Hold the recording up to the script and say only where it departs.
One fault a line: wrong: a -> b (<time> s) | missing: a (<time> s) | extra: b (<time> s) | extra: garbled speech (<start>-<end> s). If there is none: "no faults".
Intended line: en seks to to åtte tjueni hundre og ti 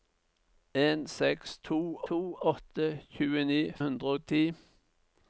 no faults